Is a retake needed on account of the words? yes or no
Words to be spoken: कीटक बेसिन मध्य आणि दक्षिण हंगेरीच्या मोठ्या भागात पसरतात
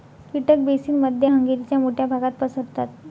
yes